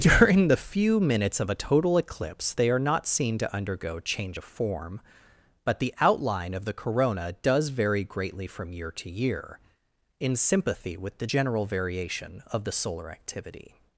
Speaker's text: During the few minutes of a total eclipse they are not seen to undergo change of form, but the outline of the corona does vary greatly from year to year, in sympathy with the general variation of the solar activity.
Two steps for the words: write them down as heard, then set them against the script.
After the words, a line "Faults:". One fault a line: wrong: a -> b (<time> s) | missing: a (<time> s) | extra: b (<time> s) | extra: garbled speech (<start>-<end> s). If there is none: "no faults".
During the few minutes of a total eclipse they are not seen to undergo change of form, but the outline of the corona does vary greatly from year to year, in sympathy with the general variation of the solar activity.
Faults:
no faults